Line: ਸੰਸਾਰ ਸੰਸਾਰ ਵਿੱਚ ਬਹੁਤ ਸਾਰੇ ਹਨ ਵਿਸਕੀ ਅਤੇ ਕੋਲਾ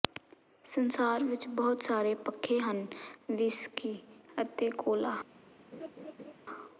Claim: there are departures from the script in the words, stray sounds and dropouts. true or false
true